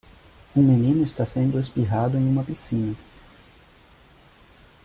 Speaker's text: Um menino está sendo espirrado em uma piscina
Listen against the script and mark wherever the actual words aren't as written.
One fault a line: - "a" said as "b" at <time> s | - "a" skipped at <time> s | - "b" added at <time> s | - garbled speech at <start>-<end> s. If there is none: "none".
none